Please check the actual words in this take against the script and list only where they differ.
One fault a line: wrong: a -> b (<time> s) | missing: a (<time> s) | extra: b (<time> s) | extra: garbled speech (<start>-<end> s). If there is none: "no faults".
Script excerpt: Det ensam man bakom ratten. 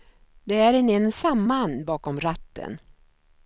extra: är en (0.6 s)